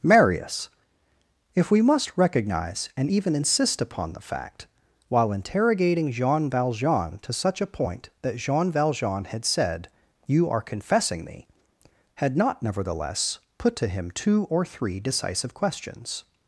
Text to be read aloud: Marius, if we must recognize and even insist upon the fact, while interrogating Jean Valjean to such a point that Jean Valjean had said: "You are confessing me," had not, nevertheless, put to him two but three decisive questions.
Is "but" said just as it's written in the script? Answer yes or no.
no